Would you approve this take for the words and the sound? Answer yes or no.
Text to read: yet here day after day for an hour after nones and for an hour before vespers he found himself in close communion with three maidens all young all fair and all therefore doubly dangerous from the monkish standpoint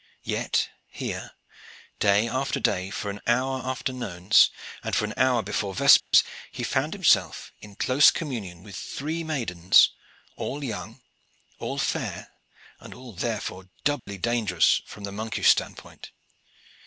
no